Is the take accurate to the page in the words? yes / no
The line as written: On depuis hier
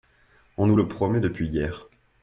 no